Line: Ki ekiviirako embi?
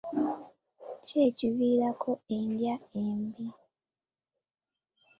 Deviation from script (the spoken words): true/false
true